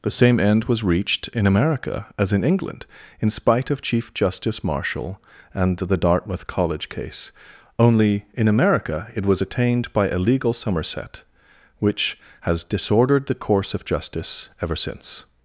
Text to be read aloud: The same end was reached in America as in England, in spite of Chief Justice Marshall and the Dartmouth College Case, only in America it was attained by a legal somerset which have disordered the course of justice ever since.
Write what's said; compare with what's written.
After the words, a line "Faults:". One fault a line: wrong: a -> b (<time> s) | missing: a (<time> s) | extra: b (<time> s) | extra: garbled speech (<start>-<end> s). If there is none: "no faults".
The same end was reached in America as in England, in spite of Chief Justice Marshall and the Dartmouth College Case, only in America it was attained by a legal somerset which has disordered the course of justice ever since.
Faults:
wrong: have -> has (12.4 s)